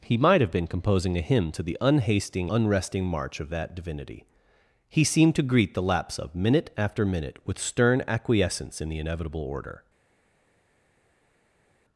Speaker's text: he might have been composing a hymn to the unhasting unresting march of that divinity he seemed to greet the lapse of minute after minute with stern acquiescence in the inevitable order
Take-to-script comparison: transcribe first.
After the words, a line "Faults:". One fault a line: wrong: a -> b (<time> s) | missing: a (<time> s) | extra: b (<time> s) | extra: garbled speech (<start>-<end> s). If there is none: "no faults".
he might have been composing a hymn to the unhasting unresting march of that divinity he seemed to greet the lapse of minute after minute with stern acquiescence in the inevitable order
Faults:
no faults